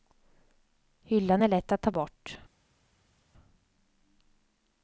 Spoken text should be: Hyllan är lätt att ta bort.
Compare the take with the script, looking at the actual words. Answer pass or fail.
pass